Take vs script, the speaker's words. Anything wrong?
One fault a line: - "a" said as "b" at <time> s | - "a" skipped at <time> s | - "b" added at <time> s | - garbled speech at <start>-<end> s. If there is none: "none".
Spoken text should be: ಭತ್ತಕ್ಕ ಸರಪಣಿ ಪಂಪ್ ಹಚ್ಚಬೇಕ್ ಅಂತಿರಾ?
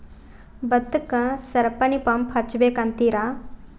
none